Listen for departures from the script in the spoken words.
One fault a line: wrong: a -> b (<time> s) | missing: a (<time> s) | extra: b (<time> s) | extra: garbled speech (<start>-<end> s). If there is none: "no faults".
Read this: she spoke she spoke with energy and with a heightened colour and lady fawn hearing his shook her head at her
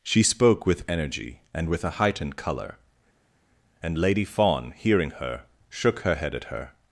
missing: she spoke (0.7 s)
wrong: his -> her (5.2 s)